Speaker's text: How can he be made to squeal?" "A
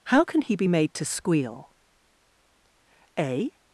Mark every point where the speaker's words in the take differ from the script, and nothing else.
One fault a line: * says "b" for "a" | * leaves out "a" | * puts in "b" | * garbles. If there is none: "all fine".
all fine